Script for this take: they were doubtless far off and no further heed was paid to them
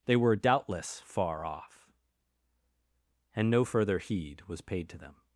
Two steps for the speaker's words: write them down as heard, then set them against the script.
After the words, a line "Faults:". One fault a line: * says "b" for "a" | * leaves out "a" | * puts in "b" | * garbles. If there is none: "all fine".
they were doubtless far off and no further heed was paid to them
Faults:
all fine